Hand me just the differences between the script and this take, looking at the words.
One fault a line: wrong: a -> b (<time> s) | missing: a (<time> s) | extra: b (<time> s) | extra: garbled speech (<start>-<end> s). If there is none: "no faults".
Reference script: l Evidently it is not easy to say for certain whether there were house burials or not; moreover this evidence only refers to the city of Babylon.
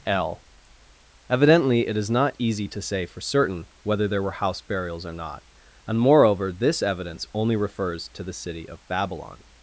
extra: and (5.8 s)